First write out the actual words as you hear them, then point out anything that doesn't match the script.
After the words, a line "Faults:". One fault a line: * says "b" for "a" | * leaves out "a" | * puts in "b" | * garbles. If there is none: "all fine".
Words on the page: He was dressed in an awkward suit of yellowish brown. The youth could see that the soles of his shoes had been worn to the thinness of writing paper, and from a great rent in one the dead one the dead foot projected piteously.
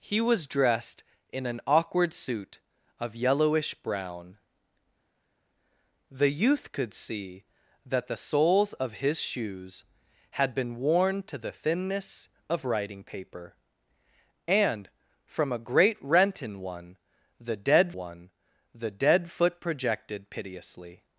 He was dressed in an awkward suit of yellowish brown. The youth could see that the soles of his shoes had been worn to the thinness of writing paper, and from a great rent in one the dead one the dead foot projected piteously.
Faults:
all fine